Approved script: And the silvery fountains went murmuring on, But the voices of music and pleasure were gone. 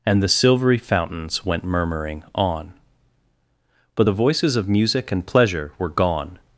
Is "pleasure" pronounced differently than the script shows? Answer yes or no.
no